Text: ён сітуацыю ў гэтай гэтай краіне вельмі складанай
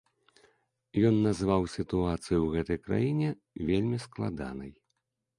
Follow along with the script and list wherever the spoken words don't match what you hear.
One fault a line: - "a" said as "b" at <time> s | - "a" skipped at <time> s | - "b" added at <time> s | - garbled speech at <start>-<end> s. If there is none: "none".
- "назваў" added at 1.2 s
- "гэтай" skipped at 2.8 s